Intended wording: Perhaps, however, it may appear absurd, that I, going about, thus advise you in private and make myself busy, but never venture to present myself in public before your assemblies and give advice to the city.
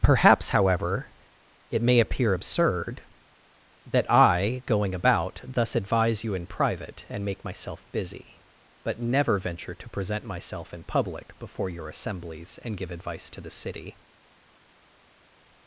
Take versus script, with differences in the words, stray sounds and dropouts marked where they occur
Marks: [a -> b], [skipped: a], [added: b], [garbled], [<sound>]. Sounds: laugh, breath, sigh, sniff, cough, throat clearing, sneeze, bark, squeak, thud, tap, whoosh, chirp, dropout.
Perhaps, however, it may appear absurd, that I, going about, thus advise you in private and make myself busy, but never venture to present myself in public before your assemblies and give advice to the city.